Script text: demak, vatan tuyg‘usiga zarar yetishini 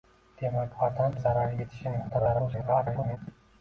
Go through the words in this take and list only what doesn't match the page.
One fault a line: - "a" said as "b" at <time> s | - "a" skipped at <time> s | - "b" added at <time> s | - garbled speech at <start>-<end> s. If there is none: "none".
- "tuyg‘usiga" skipped at 1.1 s
- garbled speech at 2.1-3.2 s